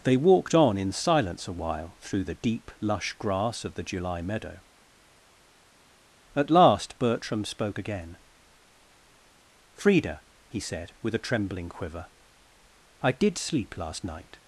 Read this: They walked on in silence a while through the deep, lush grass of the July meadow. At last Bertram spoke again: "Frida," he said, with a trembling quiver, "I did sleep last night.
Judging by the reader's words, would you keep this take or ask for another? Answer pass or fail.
pass